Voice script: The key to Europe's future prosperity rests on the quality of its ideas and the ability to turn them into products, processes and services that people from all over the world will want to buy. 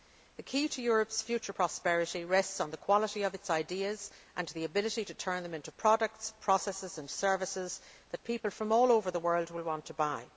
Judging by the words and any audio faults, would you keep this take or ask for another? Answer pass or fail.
pass